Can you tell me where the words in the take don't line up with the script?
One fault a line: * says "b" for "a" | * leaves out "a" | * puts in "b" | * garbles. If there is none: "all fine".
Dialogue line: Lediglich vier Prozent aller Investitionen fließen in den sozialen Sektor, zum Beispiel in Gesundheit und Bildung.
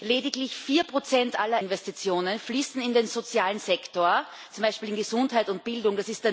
all fine